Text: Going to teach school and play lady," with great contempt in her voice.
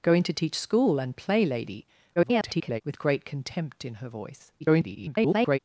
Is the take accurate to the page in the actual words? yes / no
no